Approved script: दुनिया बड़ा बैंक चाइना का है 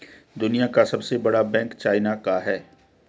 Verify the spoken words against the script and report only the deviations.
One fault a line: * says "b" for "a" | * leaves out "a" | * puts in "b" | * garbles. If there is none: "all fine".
* puts in "का सबसे"